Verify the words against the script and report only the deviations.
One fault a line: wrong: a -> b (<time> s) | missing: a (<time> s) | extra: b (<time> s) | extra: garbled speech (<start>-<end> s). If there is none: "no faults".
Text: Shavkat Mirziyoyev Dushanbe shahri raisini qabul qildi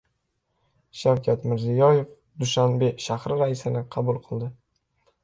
no faults